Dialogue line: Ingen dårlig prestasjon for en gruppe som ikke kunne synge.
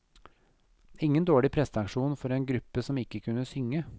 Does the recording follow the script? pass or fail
pass